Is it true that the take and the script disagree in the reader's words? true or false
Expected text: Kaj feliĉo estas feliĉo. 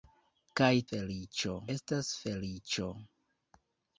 false